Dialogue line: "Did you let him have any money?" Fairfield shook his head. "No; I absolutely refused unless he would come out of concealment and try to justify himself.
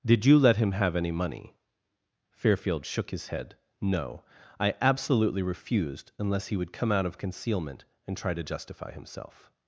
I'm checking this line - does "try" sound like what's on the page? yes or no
yes